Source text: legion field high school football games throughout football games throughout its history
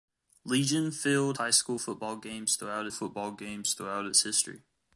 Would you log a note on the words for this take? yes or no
no